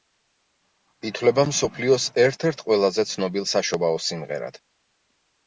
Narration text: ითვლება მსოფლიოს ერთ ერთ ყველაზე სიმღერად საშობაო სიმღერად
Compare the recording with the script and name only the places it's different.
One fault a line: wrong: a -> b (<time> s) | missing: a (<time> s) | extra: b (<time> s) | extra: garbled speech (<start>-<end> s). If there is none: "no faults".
wrong: სიმღერად -> ცნობილ (3.1 s)